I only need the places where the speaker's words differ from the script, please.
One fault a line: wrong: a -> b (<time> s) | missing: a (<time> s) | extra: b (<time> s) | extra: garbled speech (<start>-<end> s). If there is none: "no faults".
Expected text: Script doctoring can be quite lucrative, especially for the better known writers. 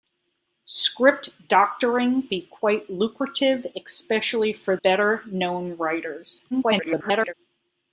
missing: can (2.2 s)
missing: the (4.8 s)
extra: garbled speech (6.5-7.3 s)